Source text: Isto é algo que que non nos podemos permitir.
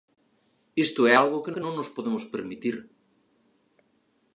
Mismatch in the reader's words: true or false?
false